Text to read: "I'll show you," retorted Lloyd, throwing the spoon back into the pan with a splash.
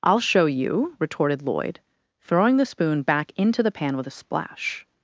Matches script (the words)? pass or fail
pass